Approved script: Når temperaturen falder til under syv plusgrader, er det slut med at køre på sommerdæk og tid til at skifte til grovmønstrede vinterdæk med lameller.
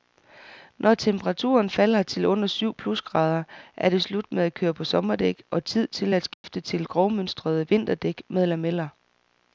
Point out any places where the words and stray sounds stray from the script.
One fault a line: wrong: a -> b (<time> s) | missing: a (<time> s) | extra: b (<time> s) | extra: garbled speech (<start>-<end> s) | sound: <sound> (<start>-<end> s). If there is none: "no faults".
sound: dropout (6.3-6.4 s)